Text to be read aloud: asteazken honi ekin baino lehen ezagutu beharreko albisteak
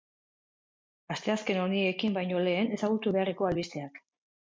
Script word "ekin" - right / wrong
right